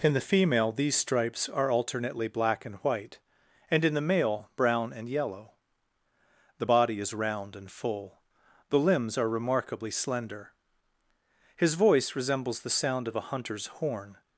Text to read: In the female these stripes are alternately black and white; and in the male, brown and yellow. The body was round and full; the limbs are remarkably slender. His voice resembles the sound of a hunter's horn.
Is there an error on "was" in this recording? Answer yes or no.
yes